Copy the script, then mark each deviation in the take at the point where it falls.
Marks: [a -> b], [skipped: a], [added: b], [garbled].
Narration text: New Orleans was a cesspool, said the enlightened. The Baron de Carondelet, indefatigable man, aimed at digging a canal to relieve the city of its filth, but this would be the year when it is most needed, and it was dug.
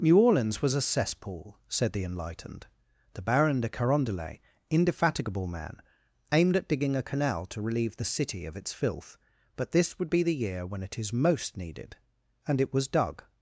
New Orleans was a cesspool, said the enlightened. The Baron de Carondelet, indefatigable man, aimed at digging a canal to relieve the city of its filth, but this would be the year when it is most needed, and it was dug.